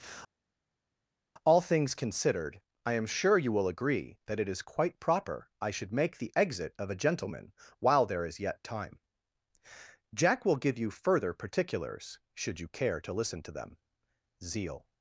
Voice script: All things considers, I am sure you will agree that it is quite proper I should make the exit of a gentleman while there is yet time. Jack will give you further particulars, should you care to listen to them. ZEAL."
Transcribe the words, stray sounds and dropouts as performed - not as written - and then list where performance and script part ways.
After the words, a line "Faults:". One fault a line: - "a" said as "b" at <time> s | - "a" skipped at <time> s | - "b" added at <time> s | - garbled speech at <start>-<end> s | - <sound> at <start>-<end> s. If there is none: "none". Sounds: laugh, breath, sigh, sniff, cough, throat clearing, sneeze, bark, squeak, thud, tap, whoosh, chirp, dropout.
All things considered, I am sure you will agree that it is quite proper I should make the exit of a gentleman while there is yet time. Jack will give you further particulars, should you care to listen to them. ZEAL."
Faults:
- "considers" said as "considered" at 1.9 s